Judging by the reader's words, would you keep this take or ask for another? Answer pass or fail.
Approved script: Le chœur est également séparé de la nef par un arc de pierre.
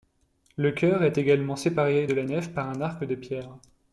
pass